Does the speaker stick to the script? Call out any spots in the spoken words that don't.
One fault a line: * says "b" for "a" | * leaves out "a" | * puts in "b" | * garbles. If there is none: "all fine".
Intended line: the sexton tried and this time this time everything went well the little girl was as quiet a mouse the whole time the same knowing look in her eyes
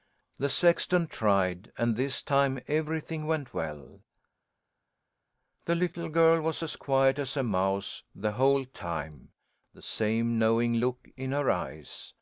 * leaves out "this time"
* puts in "as"